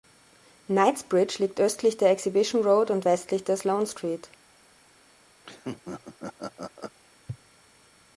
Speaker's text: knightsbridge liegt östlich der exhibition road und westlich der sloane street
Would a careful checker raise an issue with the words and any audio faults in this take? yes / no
yes